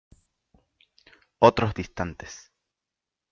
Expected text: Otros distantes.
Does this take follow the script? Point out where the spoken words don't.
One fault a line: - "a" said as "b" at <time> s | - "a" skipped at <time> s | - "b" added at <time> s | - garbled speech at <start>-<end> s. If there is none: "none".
none